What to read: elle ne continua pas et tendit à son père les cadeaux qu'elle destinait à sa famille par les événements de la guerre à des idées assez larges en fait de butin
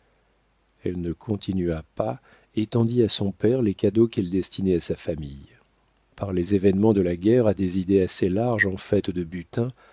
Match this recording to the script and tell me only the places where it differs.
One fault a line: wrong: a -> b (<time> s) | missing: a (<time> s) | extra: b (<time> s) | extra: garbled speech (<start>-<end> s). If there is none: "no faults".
no faults